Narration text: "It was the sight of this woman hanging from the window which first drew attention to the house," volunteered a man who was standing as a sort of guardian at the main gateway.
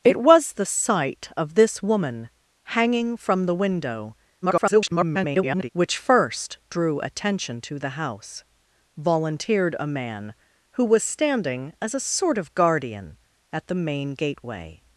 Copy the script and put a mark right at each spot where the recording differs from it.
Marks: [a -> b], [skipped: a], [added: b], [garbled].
"It was the sight of this woman hanging from the window [garbled] which first drew attention to the house," volunteered a man who was standing as a sort of guardian at the main gateway.